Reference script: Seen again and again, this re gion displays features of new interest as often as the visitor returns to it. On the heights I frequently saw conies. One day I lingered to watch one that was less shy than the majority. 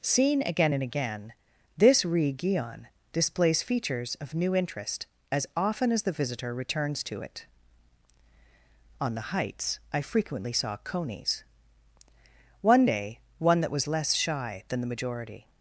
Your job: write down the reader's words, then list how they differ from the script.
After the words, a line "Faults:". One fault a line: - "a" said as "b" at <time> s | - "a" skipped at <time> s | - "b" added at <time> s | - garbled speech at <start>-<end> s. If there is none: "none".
Seen again and again, this re gion displays features of new interest as often as the visitor returns to it. On the heights I frequently saw conies. One day one that was less shy than the majority.
Faults:
- "I lingered to watch" skipped at 13.2 s